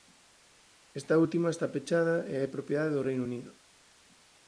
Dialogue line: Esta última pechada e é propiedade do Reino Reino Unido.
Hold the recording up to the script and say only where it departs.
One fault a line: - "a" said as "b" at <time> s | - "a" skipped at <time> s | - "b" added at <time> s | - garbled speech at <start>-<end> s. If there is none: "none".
- "está" added at 1.5 s
- "Reino" skipped at 3.2 s